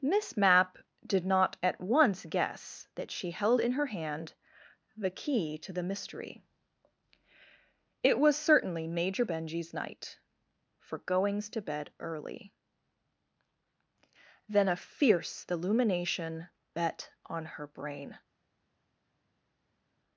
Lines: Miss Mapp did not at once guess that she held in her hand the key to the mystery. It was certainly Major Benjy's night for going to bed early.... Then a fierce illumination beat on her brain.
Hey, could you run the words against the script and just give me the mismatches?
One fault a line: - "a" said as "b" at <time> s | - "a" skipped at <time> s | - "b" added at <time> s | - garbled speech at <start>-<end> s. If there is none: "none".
- "going" said as "goings" at 11.0 s
- "beat" said as "bet" at 16.7 s